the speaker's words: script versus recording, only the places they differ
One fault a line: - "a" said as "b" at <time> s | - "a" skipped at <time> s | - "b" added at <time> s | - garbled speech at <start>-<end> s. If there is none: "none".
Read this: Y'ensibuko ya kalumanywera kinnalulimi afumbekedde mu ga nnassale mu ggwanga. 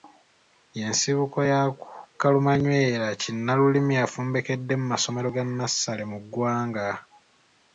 - "masomero" added at 4.9 s